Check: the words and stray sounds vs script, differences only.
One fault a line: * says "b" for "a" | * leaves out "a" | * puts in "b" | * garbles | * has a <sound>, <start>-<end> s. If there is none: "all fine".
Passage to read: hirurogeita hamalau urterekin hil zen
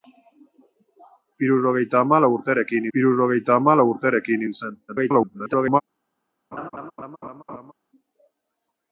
* puts in "hirurogeita hamalau urterekin"
* garbles
* has a laugh, 6.5-7.7 s